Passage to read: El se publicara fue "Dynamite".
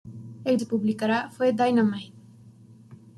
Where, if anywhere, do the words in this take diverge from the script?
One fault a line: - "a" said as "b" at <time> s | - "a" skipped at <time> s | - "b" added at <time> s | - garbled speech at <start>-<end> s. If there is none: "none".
none